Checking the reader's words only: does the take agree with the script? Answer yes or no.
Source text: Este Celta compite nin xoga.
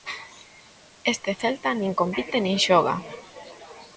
no